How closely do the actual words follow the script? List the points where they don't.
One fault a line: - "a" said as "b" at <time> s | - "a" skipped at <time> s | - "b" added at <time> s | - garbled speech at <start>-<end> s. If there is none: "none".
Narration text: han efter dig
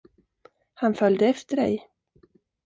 - "följde" added at 0.9 s